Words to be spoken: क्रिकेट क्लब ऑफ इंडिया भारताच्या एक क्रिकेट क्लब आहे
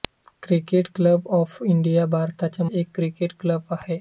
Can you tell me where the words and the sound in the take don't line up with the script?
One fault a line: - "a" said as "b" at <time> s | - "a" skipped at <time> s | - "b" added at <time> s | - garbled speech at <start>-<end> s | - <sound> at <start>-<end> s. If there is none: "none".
none